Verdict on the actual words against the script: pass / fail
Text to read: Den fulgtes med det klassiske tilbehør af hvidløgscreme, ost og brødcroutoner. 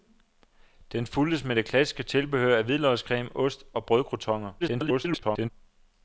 fail